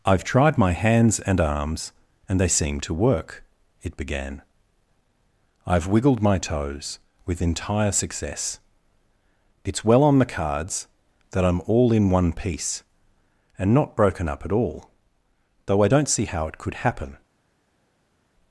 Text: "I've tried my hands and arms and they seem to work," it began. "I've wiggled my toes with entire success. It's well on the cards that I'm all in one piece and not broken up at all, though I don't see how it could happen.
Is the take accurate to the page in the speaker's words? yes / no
yes